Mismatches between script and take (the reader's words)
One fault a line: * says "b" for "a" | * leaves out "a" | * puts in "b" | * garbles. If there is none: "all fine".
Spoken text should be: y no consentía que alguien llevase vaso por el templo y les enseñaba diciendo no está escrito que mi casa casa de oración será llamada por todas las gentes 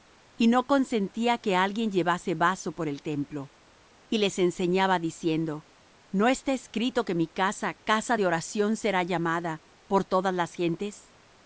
all fine